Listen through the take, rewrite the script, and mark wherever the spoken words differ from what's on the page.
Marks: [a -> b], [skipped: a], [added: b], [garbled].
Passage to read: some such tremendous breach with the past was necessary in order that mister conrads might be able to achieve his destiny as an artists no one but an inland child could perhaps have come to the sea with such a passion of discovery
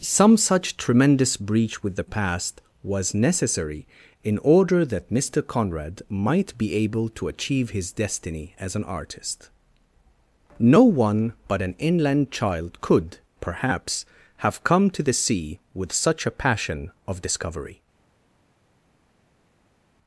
some such tremendous breach with the past was necessary in order that mister [conrads -> conrad] might be able to achieve his destiny as an [artists -> artist] no one but an inland child could perhaps have come to the sea with such a passion of discovery